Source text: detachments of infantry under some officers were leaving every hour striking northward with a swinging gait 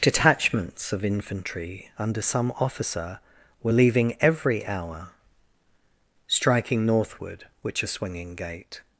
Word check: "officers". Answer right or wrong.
wrong